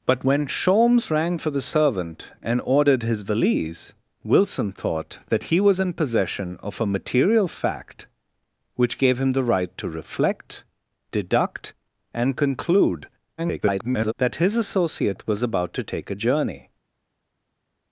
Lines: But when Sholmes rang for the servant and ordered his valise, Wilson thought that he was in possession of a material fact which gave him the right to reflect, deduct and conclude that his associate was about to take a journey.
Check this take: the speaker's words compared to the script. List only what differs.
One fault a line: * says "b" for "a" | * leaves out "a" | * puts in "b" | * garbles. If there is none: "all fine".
* garbles